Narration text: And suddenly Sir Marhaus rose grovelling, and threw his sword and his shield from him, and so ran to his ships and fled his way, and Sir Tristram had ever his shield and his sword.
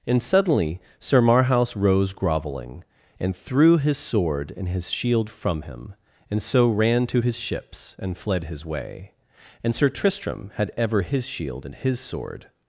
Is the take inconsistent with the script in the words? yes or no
no